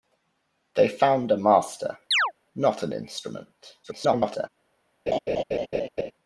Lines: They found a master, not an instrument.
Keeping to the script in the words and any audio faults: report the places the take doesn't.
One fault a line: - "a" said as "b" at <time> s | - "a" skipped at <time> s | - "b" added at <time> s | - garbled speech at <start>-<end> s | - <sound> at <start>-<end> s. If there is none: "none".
- chirp at 2.1-2.3 s
- garbled speech at 3.8-4.5 s
- laugh at 5.1-6.1 s